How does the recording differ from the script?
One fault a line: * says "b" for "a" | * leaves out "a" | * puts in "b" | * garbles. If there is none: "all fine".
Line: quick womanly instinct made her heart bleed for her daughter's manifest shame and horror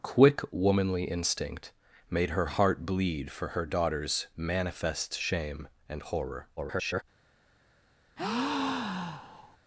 * garbles